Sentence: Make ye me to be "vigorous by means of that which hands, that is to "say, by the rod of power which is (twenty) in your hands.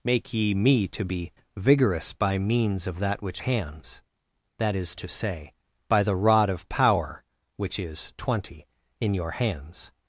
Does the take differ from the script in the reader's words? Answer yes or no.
no